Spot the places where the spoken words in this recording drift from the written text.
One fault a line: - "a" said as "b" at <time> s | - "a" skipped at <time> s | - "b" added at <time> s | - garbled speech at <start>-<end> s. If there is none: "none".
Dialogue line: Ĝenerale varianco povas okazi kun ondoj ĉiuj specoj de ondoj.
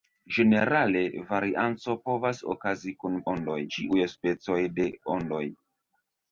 none